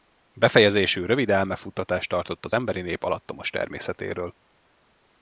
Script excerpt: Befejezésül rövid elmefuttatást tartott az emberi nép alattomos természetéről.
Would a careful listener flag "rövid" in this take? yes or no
no